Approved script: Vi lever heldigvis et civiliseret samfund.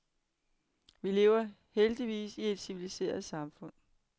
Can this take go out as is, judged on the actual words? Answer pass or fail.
fail